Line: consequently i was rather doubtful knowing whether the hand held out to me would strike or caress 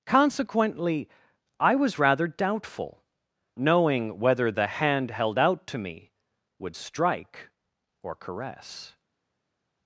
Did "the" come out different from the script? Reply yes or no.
no